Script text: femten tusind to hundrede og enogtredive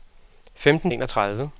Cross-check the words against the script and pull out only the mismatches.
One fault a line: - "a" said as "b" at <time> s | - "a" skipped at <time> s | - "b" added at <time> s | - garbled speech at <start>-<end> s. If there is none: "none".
- "tusind to hundrede" skipped at 0.9 s